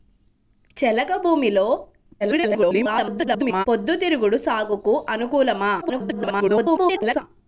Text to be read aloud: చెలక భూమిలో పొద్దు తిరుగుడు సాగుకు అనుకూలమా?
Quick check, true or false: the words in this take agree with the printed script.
false